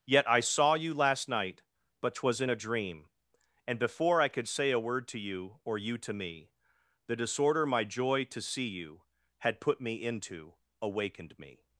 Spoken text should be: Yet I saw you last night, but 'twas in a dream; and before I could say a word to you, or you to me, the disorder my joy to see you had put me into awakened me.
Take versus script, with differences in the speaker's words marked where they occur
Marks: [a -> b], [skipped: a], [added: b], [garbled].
Yet I saw you last night, but 'twas in a dream; and before I could say a word to you, or you to me, the disorder my joy to see you had put me into awakened me.